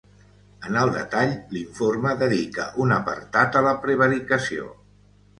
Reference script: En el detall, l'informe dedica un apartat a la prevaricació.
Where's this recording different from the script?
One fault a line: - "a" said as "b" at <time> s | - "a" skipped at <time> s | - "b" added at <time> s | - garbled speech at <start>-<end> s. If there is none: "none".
none